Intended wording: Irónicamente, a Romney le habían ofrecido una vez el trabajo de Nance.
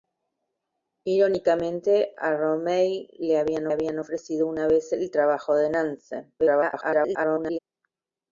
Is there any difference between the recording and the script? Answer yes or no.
yes